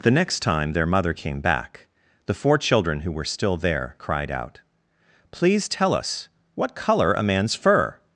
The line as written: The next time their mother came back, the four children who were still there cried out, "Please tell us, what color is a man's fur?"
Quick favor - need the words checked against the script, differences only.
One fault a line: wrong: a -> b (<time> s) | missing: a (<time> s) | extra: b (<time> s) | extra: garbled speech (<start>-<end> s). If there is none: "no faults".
missing: is (7.1 s)